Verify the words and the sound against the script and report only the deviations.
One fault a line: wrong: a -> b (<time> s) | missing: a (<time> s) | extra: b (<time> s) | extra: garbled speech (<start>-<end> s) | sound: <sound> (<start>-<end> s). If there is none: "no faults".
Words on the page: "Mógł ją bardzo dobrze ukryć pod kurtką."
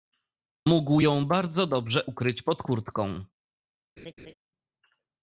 sound: laugh (4.0-4.3 s)